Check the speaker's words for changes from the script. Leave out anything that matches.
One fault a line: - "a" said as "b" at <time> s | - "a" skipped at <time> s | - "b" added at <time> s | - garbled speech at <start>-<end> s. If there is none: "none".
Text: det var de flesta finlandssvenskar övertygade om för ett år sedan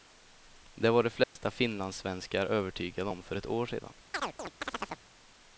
none